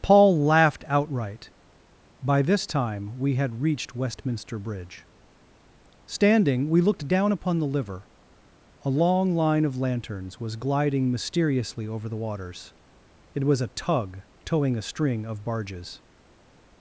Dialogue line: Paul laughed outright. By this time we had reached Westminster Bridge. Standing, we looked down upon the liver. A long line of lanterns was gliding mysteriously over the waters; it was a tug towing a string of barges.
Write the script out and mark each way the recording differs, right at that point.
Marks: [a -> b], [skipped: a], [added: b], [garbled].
Paul laughed outright. By this time we had reached Westminster Bridge. Standing, we looked down upon the liver. A long line of lanterns was gliding mysteriously over the waters; it was a tug towing a string of barges.